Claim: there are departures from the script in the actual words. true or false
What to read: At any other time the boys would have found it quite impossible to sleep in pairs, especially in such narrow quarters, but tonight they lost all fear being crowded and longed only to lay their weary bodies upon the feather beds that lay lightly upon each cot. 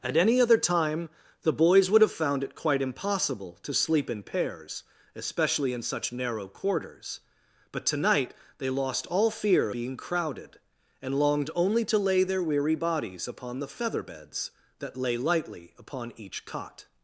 false